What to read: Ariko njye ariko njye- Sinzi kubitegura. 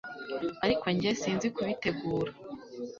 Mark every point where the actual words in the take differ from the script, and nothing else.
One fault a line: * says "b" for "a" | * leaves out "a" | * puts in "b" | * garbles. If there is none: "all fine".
* leaves out "ariko njye"